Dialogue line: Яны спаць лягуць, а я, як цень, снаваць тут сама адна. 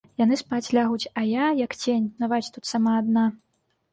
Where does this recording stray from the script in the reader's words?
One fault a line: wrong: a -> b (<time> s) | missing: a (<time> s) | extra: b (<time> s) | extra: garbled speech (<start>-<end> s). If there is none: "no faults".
no faults